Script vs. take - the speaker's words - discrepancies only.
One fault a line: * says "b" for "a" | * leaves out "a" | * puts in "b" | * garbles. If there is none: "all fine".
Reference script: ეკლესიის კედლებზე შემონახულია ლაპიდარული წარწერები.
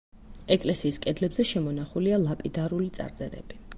all fine